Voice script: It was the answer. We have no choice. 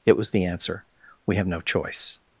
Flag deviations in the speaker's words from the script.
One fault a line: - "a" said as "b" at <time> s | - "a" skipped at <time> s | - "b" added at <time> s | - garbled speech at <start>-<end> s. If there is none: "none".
none